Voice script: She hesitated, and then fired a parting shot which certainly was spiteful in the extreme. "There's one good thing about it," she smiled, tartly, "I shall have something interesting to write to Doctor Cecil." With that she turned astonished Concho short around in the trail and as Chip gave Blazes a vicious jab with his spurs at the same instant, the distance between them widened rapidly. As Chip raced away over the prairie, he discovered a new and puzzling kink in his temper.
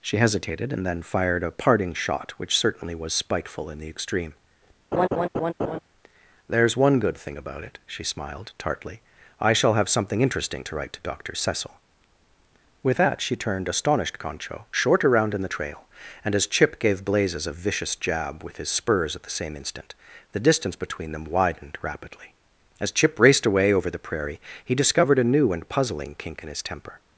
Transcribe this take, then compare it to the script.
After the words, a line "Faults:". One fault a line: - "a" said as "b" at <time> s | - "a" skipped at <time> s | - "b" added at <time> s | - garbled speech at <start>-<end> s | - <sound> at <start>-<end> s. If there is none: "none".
She hesitated, and then fired a parting shot which certainly was spiteful in the extreme. "There's one good thing about it," she smiled, tartly, "I shall have something interesting to write to Doctor Cecil." With that she turned astonished Concho short around in the trail and as Chip gave Blazes a vicious jab with his spurs at the same instant, the distance between them widened rapidly. As Chip raced away over the prairie, he discovered a new and puzzling kink in his temper.
Faults:
- laugh at 4.9-5.8 s